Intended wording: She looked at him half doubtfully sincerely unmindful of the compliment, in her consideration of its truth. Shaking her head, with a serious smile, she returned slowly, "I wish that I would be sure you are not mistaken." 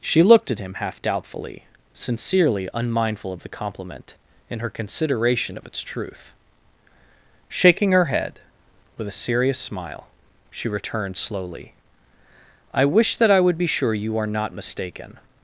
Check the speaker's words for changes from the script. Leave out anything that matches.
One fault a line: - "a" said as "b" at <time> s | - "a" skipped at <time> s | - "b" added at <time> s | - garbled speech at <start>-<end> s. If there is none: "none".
none